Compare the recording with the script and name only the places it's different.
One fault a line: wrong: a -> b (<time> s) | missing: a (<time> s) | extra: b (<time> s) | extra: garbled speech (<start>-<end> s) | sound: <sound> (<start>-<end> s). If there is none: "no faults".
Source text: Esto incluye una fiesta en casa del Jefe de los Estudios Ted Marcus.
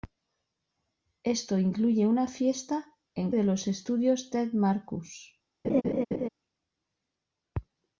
missing: casa del Jefe (3.3 s)
sound: laugh (5.6-6.3 s)